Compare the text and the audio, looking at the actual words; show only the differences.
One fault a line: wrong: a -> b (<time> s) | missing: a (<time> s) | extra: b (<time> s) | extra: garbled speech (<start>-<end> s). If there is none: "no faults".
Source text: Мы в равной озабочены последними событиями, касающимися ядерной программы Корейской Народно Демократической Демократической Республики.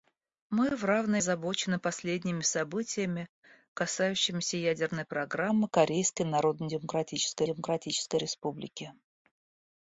no faults